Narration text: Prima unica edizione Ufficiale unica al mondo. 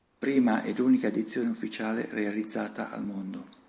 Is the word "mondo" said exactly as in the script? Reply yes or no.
yes